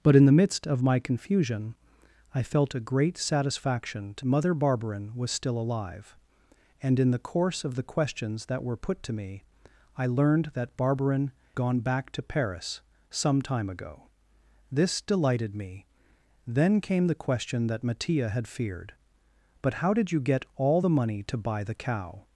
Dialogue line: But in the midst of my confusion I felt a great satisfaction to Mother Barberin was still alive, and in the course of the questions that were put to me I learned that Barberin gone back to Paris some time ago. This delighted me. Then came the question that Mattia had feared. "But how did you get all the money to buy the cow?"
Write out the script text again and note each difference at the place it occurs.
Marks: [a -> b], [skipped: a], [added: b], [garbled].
But in the midst of my confusion I felt a great satisfaction to Mother Barberin was still alive, and in the course of the questions that were put to me I learned that Barberin gone back to Paris some time ago. This delighted me. Then came the question that Mattia had feared. "But how did you get all the money to buy the cow?"